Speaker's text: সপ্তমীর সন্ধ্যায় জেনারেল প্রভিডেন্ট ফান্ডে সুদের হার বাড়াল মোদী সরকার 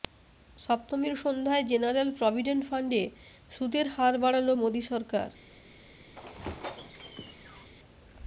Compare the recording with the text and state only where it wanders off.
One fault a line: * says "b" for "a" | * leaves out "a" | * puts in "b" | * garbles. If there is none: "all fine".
all fine